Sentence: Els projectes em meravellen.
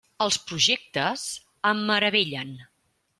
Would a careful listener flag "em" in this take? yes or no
no